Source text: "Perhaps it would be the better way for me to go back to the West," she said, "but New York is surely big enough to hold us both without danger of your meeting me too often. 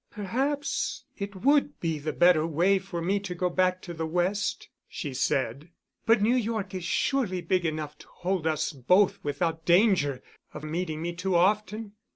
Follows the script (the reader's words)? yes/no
no